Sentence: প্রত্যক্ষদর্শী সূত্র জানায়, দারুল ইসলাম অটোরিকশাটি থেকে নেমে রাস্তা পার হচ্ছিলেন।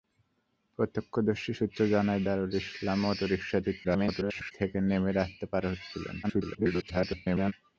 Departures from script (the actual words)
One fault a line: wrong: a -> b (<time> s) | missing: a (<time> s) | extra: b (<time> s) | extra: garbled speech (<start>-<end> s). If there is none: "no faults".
extra: garbled speech (3.8-4.5 s)
extra: garbled speech (6.2-7.5 s)